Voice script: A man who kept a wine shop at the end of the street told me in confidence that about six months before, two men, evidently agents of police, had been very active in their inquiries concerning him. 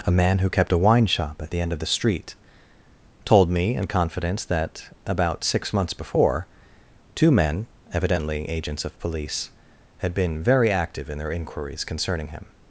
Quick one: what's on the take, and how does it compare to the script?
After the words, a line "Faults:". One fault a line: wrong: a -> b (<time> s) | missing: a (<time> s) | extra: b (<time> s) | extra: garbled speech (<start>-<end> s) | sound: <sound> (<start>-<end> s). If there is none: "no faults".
A man who kept a wine shop at the end of the street told me in confidence that about six months before, two men, evidently agents of police, had been very active in their inquiries concerning him.
Faults:
no faults